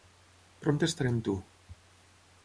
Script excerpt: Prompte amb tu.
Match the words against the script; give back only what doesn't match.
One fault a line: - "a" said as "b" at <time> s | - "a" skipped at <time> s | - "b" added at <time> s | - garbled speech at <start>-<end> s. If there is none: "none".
- "estaré" added at 0.9 s